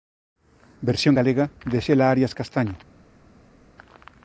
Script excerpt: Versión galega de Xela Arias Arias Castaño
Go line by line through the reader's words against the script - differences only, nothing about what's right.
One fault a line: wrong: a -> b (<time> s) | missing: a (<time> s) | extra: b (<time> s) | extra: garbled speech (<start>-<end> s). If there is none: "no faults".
missing: Arias (2.4 s)